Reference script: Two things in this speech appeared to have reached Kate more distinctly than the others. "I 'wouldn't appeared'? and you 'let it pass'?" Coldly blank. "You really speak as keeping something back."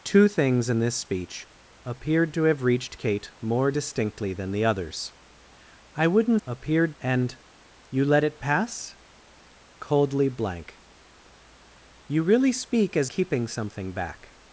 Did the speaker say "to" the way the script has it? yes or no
yes